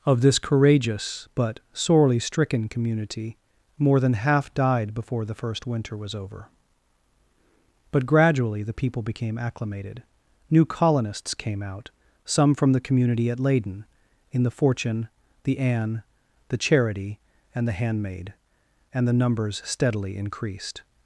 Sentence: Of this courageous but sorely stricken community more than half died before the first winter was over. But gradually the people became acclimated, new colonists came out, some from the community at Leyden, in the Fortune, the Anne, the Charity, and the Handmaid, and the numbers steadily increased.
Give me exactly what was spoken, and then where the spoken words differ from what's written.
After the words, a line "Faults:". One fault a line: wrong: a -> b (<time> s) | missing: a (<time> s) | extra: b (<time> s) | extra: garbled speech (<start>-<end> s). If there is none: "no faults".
Of this courageous but sorely stricken community more than half died before the first winter was over. But gradually the people became acclimated, new colonists came out, some from the community at Leyden, in the Fortune, the Anne, the Charity, and the Handmaid, and the numbers steadily increased.
Faults:
no faults